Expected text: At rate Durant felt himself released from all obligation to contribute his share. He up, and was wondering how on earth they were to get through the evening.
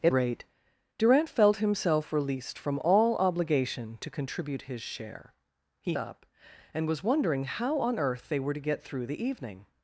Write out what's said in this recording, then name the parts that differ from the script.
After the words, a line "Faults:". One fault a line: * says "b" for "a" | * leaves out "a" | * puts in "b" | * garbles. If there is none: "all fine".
At rate Durant felt himself released from all obligation to contribute his share. He up, and was wondering how on earth they were to get through the evening.
Faults:
all fine